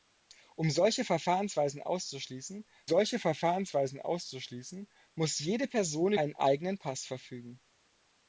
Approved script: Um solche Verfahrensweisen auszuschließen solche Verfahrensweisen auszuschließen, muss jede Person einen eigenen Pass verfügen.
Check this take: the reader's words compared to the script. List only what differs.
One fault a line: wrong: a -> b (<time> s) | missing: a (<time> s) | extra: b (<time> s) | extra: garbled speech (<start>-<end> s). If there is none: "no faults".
no faults